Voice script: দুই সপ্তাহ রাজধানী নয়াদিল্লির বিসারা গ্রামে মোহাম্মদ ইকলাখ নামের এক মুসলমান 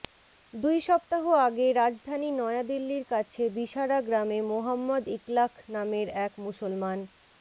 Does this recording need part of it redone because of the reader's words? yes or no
yes